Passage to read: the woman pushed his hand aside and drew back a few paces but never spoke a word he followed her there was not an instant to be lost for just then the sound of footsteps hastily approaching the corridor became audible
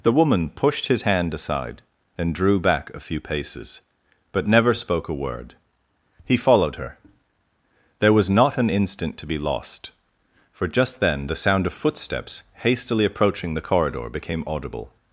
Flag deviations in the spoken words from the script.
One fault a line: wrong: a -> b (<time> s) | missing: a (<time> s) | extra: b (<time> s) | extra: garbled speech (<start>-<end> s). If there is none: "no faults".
no faults